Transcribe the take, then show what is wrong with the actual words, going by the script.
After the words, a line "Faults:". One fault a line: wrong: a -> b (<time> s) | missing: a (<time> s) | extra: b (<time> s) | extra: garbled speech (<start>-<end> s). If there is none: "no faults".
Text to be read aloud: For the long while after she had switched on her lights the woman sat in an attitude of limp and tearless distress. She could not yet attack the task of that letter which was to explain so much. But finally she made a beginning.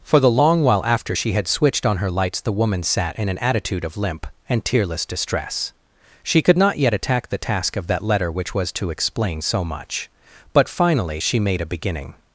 For the long while after she had switched on her lights the woman sat in an attitude of limp and tearless distress. She could not yet attack the task of that letter which was to explain so much. But finally she made a beginning.
Faults:
no faults